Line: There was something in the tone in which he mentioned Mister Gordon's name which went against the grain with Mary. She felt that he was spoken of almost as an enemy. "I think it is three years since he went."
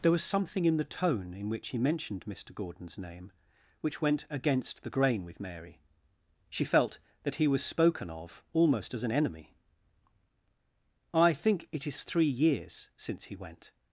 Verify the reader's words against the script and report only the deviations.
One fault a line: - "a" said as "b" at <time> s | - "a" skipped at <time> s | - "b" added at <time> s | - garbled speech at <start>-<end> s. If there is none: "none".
none